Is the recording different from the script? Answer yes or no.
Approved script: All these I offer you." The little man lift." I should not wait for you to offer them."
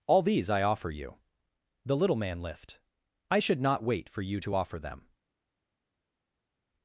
no